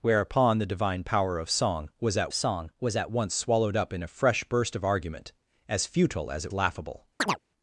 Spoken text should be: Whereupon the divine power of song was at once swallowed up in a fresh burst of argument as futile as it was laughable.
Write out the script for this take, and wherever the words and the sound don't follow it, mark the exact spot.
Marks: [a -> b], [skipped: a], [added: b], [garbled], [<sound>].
Whereupon the divine power of song was at [added: song was at] once swallowed up in a fresh burst of argument as futile as it [skipped: was] laughable. [chirp]